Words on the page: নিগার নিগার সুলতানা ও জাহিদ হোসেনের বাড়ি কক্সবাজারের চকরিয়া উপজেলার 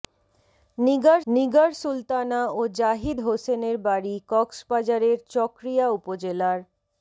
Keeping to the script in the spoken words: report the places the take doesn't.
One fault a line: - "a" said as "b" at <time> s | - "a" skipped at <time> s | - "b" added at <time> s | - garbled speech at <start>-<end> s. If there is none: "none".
none